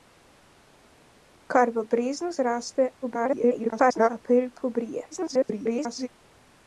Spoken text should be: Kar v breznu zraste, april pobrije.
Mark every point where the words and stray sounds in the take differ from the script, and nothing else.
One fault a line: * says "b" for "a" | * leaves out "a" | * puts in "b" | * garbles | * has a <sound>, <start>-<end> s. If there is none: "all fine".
* garbles
* garbles